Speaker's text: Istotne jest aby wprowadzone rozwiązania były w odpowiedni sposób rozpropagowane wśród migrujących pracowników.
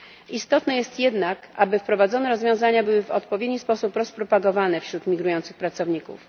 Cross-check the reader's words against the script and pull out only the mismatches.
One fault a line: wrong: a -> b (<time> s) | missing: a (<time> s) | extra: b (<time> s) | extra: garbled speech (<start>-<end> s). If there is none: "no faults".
extra: jednak (1.0 s)